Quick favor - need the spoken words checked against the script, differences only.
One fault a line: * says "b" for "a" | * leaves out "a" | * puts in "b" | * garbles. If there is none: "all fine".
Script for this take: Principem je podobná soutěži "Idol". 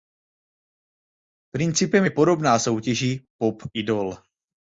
* puts in "Pop"